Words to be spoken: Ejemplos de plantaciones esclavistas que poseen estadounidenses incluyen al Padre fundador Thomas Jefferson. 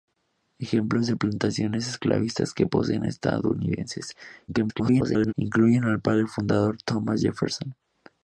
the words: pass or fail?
fail